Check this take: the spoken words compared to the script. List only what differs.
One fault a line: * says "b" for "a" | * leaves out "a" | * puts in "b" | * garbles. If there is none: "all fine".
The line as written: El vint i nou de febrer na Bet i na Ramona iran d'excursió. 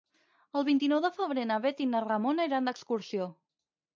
all fine